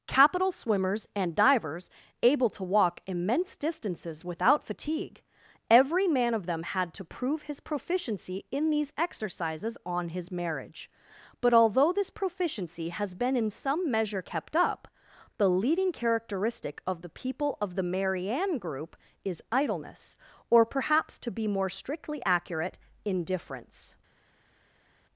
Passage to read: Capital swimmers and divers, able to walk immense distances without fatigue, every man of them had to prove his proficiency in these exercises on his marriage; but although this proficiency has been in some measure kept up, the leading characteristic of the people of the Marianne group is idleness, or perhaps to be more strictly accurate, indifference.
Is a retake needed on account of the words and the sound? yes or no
no